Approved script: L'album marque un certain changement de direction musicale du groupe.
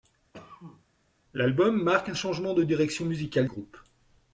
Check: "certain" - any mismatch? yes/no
yes